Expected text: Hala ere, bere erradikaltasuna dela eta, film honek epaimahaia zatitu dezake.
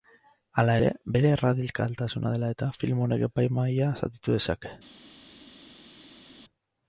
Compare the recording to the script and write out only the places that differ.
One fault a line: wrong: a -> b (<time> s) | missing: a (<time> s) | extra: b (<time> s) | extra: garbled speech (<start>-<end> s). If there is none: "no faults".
no faults